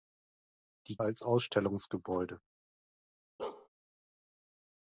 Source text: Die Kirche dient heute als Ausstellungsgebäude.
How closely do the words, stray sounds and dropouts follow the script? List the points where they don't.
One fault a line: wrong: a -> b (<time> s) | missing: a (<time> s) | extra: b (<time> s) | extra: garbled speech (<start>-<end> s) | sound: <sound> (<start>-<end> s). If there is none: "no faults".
missing: Kirche dient heute (1.0 s)
sound: bark (3.4-3.7 s)